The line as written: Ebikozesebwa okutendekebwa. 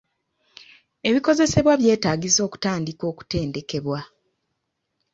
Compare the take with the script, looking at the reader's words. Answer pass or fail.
fail